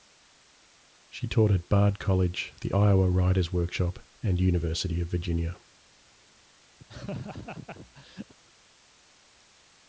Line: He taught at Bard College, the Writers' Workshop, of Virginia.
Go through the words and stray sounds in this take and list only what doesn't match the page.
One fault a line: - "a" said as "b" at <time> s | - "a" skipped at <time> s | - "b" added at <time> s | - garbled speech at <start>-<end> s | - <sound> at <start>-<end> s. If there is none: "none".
- "He" said as "She" at 1.1 s
- "Iowa" added at 2.7 s
- "and University" added at 4.2 s
- laugh at 6.8-8.3 s